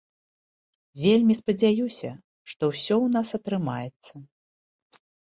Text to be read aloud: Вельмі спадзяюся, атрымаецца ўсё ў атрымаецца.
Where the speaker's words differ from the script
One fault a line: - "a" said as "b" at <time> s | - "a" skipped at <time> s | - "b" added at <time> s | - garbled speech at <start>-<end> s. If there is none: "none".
- "атрымаецца" said as "што" at 2.5 s
- "нас" added at 3.1 s